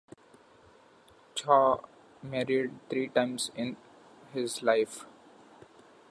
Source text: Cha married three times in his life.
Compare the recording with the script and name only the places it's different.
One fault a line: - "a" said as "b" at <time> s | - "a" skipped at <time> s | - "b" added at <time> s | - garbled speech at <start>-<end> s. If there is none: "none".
none